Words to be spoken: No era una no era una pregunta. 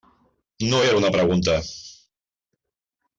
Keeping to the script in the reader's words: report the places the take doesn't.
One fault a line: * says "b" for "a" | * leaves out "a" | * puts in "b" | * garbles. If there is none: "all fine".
* leaves out "no era una"